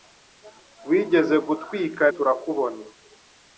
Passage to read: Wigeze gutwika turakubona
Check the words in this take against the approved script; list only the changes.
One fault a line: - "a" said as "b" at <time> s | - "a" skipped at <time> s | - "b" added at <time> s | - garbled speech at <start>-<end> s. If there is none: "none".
none